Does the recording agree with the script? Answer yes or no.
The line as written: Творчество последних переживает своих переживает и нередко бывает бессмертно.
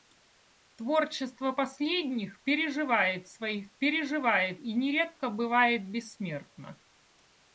yes